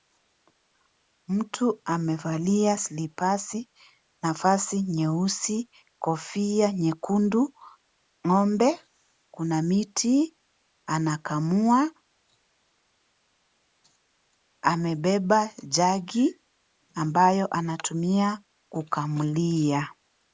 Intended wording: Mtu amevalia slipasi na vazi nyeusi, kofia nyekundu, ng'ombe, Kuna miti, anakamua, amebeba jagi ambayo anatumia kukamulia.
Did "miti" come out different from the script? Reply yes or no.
no